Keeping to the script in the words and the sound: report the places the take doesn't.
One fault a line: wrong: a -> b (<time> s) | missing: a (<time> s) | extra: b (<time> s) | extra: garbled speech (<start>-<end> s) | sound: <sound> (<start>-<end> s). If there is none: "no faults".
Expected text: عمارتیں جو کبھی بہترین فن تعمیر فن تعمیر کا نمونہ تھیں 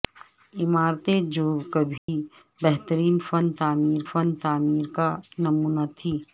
sound: dropout (2.0-2.1 s)